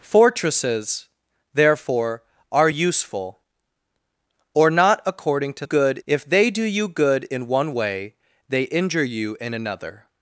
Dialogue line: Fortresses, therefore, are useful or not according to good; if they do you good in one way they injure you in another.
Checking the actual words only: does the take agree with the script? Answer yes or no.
yes